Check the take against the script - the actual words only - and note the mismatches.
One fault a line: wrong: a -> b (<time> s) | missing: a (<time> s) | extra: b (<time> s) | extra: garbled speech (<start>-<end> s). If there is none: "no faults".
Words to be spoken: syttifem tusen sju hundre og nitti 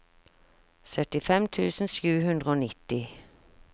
no faults